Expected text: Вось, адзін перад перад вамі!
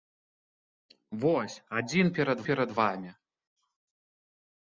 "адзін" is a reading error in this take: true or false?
false